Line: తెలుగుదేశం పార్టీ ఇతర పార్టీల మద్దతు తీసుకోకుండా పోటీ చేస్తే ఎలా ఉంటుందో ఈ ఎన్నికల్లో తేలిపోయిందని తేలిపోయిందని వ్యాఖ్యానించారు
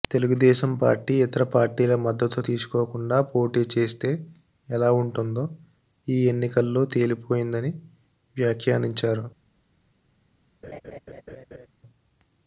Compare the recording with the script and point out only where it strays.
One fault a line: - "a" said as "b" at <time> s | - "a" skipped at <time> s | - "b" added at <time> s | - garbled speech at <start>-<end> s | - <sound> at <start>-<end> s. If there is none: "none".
- "తేలిపోయిందని" skipped at 7.7 s
- laugh at 10.6-11.7 s